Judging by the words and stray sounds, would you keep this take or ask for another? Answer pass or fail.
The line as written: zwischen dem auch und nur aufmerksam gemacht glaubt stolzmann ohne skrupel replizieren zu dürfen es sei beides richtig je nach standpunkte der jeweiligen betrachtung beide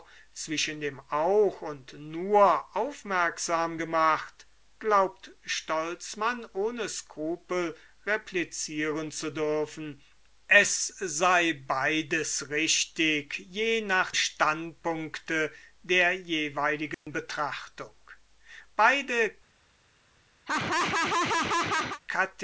fail